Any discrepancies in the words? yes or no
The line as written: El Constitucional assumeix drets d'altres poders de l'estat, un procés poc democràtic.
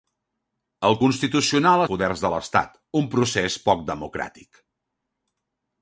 yes